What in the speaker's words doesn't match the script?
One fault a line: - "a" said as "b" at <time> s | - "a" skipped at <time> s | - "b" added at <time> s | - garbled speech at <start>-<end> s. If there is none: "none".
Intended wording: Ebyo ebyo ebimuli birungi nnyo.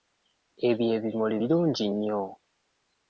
- "ebyo" skipped at 0.8 s